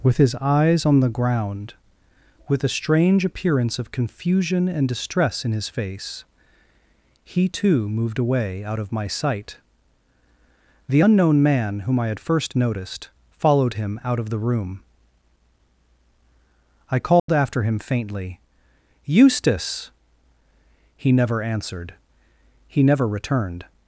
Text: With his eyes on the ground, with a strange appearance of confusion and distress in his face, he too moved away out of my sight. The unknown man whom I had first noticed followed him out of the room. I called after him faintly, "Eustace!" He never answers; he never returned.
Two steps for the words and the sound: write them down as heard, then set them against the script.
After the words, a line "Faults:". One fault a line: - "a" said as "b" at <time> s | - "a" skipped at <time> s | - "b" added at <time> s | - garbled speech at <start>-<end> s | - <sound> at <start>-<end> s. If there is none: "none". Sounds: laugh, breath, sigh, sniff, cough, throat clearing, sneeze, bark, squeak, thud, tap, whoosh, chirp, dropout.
With his eyes on the ground, with a strange appearance of confusion and distress in his face, he too moved away out of my sight. The unknown man whom I had first noticed followed him out of the room. I called after him faintly, "Eustace!" He never answered; he never returned.
Faults:
- dropout at 17.2-17.3 s
- "answers" said as "answered" at 21.4 s